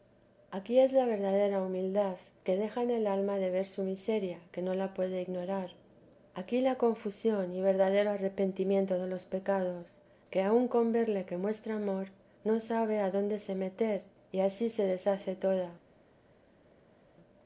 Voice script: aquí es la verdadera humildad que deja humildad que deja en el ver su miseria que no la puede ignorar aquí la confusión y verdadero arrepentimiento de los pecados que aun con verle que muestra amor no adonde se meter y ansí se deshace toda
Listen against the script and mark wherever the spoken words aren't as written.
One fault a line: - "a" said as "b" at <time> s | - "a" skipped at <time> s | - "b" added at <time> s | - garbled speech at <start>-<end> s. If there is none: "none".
- "humildad que deja en el" said as "en el alma de" at 2.8 s
- "sabe" added at 12.6 s